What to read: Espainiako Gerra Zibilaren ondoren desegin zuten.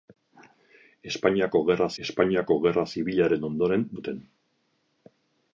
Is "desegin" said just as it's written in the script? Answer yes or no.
no